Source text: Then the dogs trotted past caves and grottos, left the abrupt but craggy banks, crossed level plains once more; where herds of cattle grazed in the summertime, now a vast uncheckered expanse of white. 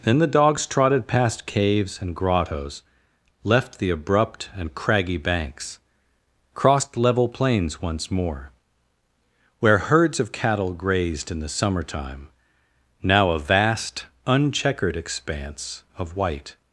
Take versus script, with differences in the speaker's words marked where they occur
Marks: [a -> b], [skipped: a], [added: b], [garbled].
Then the dogs trotted past caves and grottos, left the abrupt [but -> and] craggy banks, crossed level plains once more; where herds of cattle grazed in the summertime, now a vast uncheckered expanse of white.